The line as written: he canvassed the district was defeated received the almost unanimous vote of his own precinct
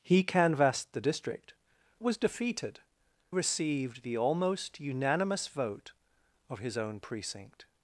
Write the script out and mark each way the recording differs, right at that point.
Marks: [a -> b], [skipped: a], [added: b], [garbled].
he canvassed the district was defeated received the almost unanimous vote of his own precinct